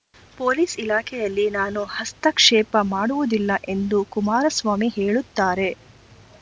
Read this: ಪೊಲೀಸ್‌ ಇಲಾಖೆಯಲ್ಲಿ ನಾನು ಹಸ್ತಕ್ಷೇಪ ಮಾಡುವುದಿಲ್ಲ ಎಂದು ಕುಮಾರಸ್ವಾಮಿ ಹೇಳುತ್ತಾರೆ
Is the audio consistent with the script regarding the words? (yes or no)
yes